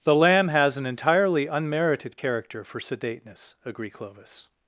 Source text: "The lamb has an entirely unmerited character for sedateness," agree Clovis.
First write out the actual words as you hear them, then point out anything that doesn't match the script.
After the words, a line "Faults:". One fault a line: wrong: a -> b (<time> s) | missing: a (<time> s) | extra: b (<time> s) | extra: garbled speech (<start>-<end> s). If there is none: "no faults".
"The lamb has an entirely unmerited character for sedateness," agree Clovis.
Faults:
no faults